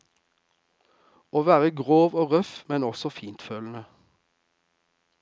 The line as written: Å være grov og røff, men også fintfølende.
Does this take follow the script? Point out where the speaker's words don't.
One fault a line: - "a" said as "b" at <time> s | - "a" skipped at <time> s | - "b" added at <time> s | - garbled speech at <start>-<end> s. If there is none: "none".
none